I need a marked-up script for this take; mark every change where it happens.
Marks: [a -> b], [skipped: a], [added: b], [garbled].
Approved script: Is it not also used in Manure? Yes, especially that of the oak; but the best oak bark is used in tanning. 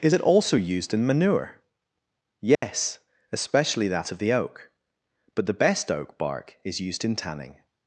Is it [skipped: not] also used in Manure? Yes, especially that of the oak; but the best oak bark is used in tanning.